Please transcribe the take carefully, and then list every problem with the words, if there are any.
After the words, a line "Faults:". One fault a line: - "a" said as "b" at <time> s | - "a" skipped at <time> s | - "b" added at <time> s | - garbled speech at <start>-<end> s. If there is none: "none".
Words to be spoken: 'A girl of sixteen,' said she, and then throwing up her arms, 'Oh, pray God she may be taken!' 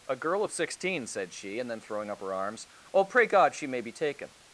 'A girl of sixteen,' said she, and then throwing up her arms, 'Oh, pray God she may be taken!'
Faults:
none